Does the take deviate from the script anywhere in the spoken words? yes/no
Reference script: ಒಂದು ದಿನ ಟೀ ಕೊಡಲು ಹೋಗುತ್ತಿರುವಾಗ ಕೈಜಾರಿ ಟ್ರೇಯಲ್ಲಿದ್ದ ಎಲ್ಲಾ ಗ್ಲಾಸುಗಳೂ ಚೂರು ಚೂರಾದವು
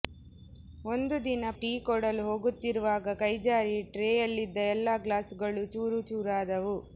no